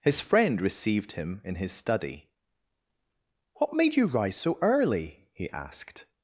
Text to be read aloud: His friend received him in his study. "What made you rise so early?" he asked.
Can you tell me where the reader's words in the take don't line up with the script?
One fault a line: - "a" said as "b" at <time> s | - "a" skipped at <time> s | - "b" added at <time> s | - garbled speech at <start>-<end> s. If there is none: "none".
none